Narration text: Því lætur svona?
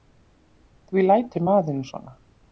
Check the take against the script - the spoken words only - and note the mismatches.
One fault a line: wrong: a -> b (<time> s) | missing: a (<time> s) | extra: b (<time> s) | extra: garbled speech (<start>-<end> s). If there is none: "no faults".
extra: maðurinn (1.5 s)